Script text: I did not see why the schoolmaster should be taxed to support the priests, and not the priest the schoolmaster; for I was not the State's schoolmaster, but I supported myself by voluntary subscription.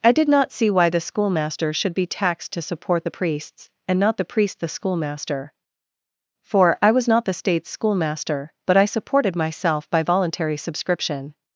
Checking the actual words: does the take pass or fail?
pass